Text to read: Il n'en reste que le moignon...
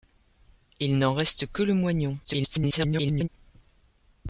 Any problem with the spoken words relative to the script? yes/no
yes